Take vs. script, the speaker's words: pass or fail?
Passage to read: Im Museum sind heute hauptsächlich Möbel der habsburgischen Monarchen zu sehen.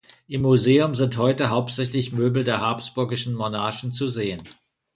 pass